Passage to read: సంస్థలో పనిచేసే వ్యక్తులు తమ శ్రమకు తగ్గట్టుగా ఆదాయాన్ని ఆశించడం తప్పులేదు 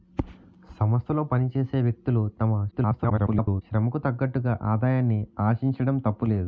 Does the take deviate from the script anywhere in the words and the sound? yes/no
yes